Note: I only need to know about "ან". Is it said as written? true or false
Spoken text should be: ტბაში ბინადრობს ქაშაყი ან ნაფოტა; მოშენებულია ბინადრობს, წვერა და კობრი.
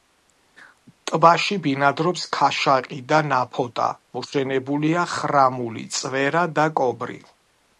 false